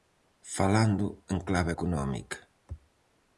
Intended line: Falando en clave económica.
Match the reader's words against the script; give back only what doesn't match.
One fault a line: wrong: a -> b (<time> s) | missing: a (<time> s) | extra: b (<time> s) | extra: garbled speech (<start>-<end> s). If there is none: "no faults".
no faults